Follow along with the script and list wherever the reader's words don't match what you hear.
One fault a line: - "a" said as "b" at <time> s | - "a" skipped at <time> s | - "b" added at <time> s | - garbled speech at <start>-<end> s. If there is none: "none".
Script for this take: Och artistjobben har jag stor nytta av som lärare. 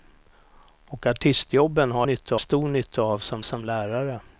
- "jag" said as "nytta" at 2.0 s
- "som" added at 3.4 s